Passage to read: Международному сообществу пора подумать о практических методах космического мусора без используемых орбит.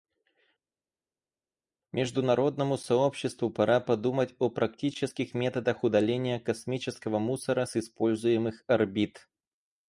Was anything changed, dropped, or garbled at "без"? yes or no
yes